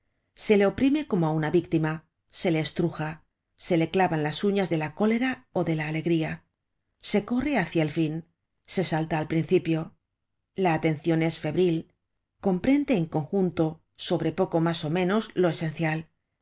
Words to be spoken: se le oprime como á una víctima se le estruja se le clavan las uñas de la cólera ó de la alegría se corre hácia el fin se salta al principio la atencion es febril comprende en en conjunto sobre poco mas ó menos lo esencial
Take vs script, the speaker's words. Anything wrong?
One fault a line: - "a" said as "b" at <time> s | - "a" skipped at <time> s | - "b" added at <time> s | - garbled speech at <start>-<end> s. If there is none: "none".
- "en" skipped at 13.1 s